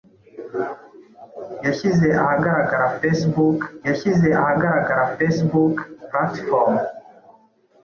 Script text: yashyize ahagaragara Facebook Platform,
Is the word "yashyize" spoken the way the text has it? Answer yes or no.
yes